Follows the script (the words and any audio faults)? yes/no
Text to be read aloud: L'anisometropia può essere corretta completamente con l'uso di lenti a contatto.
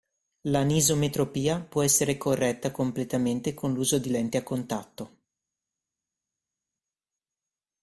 yes